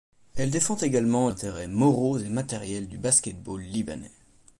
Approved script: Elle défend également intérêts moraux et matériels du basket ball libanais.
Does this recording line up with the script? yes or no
yes